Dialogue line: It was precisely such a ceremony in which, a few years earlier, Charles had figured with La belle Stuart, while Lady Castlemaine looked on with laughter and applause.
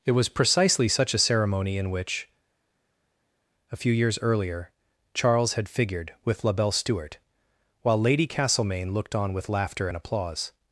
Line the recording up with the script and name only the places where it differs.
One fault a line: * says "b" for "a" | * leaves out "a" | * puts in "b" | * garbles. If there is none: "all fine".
all fine